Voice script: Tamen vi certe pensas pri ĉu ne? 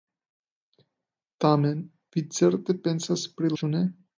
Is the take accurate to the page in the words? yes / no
yes